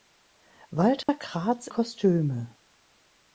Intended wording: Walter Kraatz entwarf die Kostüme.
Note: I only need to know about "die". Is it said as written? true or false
false